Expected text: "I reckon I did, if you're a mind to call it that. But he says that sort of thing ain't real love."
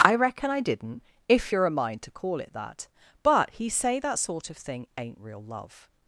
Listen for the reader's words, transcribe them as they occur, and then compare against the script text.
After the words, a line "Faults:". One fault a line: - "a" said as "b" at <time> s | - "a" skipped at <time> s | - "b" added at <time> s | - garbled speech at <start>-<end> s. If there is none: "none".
"I reckon I didn't, if you're a mind to call it that. But he say that sort of thing ain't real love."
Faults:
- "did" said as "didn't" at 0.6 s
- "says" said as "say" at 3.7 s